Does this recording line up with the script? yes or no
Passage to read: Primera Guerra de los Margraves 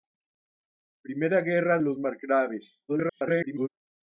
no